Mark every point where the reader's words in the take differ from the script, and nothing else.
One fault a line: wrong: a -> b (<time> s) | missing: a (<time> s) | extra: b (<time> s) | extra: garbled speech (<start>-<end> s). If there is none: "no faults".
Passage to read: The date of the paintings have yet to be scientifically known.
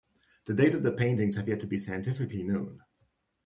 no faults